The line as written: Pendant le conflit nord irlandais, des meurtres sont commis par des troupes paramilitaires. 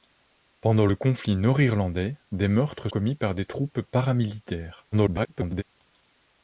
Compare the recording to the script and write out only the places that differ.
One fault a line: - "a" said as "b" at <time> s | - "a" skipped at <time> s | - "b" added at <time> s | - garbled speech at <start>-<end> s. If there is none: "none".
- "sont" skipped at 2.9 s
- garbled speech at 4.9-5.6 s